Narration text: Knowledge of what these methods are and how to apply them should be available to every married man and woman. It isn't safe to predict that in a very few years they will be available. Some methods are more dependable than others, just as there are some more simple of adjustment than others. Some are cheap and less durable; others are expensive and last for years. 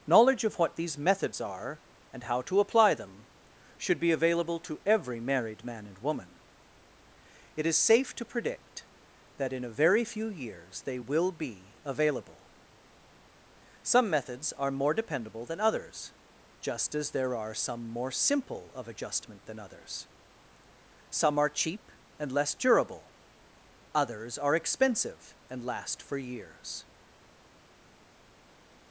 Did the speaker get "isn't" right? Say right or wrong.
wrong